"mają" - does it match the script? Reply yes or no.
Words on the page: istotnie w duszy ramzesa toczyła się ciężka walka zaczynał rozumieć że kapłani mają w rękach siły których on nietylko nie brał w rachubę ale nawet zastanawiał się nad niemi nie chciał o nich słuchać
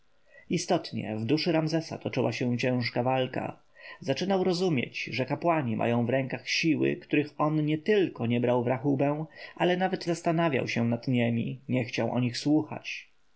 yes